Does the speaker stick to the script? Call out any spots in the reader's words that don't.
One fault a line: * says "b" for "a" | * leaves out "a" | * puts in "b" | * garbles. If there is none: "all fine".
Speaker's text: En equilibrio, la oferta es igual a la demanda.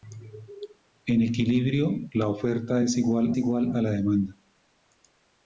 * puts in "igual"